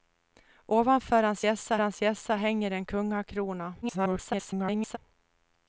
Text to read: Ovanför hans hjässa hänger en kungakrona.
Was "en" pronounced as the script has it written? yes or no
yes